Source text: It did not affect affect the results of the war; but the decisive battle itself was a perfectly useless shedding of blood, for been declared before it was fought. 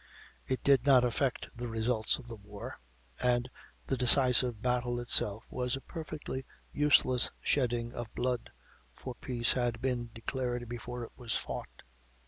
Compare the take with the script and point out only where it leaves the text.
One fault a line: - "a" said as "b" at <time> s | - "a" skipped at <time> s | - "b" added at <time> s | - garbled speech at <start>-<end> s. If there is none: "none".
- "affect" skipped at 1.5 s
- "but" said as "and" at 3.2 s
- "peace had" added at 9.1 s